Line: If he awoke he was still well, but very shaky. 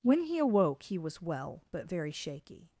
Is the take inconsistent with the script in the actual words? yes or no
yes